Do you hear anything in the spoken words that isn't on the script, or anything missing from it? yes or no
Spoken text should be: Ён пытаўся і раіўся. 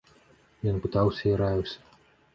no